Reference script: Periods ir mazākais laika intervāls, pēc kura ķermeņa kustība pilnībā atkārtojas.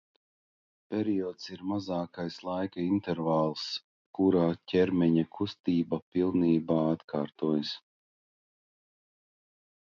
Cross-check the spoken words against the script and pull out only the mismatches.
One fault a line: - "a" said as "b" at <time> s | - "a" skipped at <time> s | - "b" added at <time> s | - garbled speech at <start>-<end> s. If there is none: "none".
- "pēc" skipped at 3.6 s